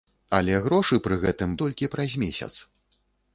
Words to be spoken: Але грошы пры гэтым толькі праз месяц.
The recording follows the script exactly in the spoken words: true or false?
true